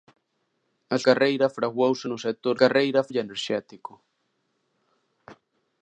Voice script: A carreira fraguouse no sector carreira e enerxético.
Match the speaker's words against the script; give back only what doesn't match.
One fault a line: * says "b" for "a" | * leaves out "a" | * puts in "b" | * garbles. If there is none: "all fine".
all fine